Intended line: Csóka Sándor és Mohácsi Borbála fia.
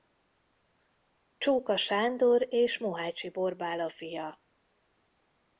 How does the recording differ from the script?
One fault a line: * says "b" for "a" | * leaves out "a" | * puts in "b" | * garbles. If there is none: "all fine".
all fine